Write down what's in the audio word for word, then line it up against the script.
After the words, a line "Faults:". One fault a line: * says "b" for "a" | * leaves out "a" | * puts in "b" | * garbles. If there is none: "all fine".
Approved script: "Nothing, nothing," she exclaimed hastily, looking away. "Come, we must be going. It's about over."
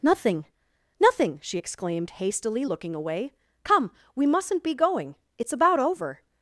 "Nothing, nothing," she exclaimed hastily, looking away. "Come, we mustn't be going. It's about over."
Faults:
* says "mustn't" for "must"